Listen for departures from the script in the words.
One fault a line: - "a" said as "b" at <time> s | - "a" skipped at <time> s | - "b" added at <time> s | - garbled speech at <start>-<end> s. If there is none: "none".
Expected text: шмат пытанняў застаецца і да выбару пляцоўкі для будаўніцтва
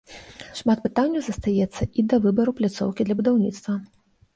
none